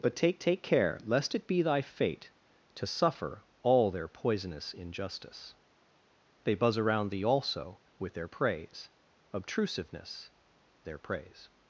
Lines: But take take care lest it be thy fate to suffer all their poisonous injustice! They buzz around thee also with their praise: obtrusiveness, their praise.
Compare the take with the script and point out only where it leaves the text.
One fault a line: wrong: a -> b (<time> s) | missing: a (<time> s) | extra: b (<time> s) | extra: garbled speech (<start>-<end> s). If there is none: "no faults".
no faults